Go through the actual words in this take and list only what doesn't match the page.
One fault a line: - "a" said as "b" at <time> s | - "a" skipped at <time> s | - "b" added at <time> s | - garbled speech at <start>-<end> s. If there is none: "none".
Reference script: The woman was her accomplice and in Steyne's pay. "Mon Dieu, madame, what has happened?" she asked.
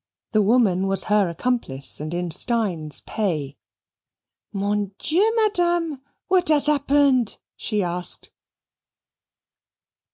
none